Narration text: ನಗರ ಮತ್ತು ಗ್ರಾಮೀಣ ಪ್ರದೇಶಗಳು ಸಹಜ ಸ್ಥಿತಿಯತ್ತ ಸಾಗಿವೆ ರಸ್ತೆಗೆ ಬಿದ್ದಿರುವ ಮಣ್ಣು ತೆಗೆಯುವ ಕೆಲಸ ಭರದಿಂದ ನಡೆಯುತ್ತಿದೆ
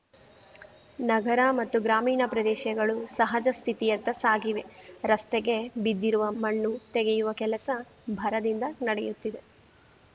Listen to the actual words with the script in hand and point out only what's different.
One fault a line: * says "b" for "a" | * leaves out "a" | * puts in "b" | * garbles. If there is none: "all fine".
all fine